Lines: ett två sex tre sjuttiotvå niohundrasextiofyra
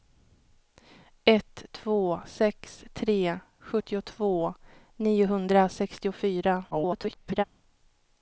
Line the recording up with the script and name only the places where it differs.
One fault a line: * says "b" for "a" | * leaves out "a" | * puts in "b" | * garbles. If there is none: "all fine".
* garbles